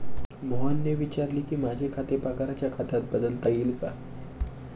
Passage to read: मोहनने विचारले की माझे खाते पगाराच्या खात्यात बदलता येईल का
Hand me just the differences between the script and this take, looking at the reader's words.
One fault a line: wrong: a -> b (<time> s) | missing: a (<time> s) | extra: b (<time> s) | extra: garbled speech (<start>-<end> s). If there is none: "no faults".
no faults